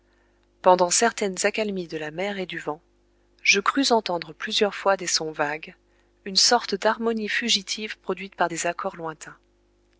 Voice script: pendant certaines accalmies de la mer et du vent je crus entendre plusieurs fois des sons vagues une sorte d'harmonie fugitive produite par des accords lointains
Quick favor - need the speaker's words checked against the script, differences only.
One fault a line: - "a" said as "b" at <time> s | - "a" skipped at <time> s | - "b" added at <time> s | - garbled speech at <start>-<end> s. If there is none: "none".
none